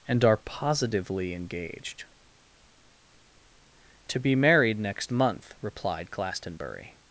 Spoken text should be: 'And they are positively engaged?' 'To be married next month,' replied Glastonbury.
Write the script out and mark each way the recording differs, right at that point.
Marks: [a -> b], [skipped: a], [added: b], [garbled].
'And [skipped: they] are positively engaged?' 'To be married next month,' replied Glastonbury.